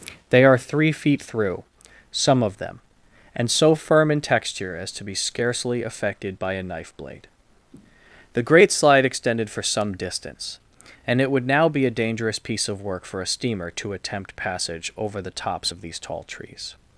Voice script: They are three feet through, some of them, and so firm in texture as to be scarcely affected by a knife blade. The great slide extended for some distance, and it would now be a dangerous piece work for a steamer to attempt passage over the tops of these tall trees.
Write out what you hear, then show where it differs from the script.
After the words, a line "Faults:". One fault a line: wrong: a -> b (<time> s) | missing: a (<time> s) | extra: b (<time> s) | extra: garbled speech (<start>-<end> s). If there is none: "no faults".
They are three feet through, some of them, and so firm in texture as to be scarcely affected by a knife blade. The great slide extended for some distance, and it would now be a dangerous piece of work for a steamer to attempt passage over the tops of these tall trees.
Faults:
extra: of (12.7 s)